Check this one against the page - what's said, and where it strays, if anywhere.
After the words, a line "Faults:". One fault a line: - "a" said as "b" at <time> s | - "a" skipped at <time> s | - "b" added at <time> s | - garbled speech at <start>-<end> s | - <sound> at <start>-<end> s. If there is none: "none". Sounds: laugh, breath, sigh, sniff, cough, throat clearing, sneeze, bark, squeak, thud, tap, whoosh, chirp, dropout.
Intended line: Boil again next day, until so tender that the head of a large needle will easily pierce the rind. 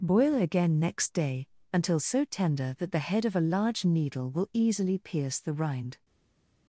Boil again next day, until so tender that the head of a large needle will easily pierce the rind.
Faults:
none